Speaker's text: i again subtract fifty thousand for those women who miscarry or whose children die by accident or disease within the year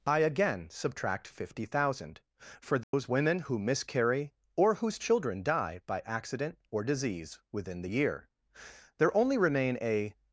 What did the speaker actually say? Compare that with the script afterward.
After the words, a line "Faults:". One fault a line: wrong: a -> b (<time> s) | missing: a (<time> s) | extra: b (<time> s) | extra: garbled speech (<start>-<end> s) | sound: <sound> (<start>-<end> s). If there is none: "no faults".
i again subtract fifty thousand for those women who miscarry or whose children die by accident or disease within the year there only remain a
Faults:
sound: dropout (2.8-2.9 s)
extra: there only remain a (9.0 s)